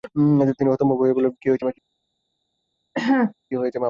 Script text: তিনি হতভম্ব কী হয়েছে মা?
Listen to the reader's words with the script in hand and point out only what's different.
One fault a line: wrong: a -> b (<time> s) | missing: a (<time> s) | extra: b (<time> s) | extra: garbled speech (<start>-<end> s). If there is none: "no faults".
extra: হয়ে বললেন (1.0 s)